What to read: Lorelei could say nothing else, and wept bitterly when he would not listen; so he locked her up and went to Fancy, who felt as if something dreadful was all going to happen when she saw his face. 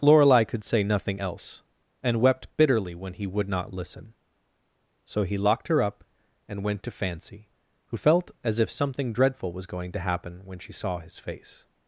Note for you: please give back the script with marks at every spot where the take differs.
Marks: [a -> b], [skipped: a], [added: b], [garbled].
Lorelei could say nothing else, and wept bitterly when he would not listen; so he locked her up and went to Fancy, who felt as if something dreadful was [skipped: all] going to happen when she saw his face.